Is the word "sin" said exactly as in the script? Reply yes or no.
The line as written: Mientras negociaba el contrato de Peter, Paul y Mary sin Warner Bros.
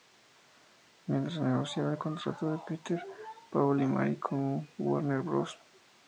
no